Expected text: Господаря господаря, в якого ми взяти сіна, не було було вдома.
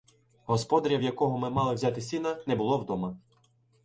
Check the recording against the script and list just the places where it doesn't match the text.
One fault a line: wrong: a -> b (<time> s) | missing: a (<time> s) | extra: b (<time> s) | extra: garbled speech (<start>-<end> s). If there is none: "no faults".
missing: господаря (1.0 s)
extra: мали (1.5 s)
missing: було (2.8 s)